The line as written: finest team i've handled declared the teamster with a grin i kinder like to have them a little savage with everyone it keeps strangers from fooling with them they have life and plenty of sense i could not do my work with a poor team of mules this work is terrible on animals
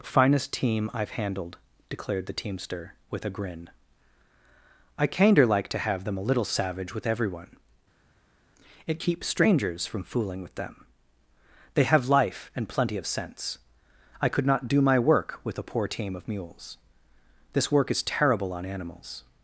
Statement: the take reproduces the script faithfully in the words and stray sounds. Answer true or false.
true